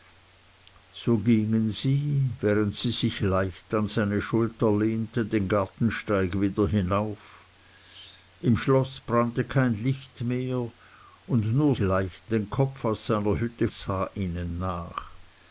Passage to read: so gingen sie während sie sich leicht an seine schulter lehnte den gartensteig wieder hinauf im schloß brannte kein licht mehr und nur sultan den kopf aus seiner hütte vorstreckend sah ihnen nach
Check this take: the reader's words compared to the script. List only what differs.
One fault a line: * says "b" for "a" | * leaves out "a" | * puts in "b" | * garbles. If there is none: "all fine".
* says "leicht" for "sultan"
* leaves out "vorstreckend"